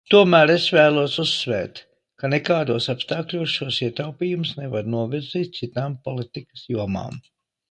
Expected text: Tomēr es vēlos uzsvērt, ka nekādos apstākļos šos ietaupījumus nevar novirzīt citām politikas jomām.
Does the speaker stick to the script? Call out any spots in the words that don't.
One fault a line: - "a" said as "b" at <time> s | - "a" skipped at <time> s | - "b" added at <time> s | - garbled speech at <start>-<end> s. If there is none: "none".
none